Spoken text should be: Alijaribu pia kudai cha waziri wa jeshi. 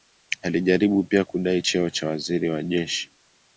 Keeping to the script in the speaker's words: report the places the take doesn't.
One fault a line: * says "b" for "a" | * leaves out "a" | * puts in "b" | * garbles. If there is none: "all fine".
* puts in "cheo"